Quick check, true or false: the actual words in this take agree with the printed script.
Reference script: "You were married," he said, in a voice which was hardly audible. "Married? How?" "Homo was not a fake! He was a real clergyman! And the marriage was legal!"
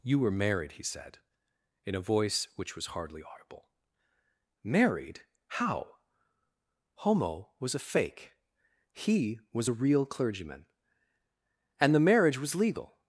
false